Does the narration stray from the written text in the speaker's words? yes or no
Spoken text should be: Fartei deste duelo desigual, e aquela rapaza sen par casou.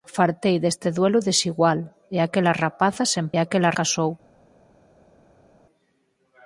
yes